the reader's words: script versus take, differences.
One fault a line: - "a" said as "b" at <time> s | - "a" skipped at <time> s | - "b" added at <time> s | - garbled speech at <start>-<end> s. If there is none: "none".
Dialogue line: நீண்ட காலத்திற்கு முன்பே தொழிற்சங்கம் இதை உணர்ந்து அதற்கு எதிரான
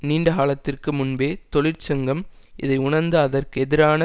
none